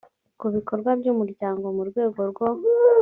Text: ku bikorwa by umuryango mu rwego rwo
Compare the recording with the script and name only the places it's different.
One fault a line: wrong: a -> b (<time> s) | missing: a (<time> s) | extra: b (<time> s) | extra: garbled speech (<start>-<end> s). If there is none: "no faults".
no faults